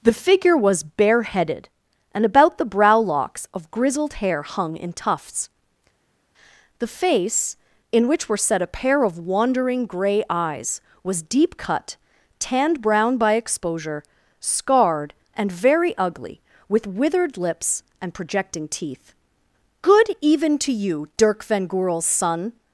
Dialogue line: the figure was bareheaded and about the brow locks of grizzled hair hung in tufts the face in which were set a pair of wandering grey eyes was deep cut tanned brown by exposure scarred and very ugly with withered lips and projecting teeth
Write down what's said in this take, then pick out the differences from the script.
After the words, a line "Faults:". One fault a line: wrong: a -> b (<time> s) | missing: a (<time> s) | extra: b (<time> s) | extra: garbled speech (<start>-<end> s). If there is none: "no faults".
the figure was bareheaded and about the brow locks of grizzled hair hung in tufts the face in which were set a pair of wandering grey eyes was deep cut tanned brown by exposure scarred and very ugly with withered lips and projecting teeth good even to you dirk van goorl's son
Faults:
extra: good even to you dirk van goorl's son (19.8 s)